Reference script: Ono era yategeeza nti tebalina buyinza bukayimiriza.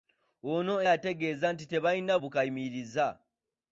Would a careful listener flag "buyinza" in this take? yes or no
yes